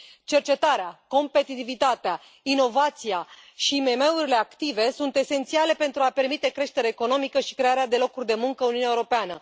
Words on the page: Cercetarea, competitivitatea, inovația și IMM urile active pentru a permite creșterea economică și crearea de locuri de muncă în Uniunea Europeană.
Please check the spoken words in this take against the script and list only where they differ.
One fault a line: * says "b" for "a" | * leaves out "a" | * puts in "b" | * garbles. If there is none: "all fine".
* puts in "sunt esențiale"